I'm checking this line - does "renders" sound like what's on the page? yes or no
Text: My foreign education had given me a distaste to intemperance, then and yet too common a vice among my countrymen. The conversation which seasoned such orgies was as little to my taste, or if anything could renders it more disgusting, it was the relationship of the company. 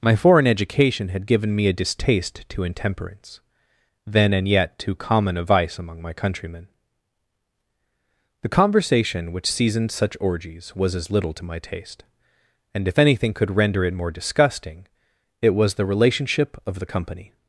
no